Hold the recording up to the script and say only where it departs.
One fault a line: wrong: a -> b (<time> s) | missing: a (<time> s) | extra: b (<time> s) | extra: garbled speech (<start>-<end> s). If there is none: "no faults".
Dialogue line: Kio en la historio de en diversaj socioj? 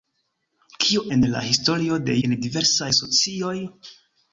no faults